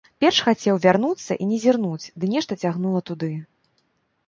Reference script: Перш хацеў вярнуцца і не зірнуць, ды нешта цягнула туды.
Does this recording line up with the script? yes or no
yes